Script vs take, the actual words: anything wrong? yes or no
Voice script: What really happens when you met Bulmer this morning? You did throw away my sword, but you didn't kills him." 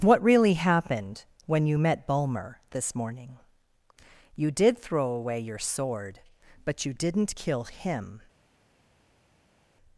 yes